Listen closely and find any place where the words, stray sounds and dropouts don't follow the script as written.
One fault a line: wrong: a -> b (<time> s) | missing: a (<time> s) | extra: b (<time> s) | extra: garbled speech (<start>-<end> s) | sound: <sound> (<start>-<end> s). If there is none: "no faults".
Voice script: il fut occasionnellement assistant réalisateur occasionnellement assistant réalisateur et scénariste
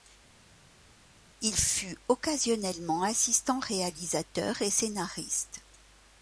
missing: occasionnellement assistant réalisateur (4.6 s)